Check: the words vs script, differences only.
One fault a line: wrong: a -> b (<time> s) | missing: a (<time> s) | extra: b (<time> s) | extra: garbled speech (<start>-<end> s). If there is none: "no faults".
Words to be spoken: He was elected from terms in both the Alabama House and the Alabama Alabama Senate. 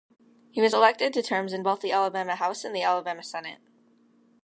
wrong: from -> to (1.1 s)
missing: Alabama (3.2 s)